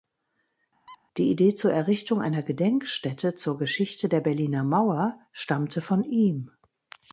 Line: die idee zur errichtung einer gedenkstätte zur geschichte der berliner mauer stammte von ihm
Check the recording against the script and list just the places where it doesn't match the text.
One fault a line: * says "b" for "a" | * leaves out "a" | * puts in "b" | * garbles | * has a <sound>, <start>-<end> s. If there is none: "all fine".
* has a squeak, 0.9-1.0 s